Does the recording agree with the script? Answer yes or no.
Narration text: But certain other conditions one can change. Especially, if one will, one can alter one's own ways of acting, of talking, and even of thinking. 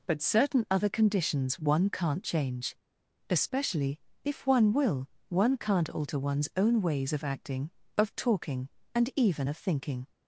no